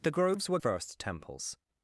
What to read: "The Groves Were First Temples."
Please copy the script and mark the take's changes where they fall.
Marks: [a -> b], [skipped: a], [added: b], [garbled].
"The Groves Were First Temples."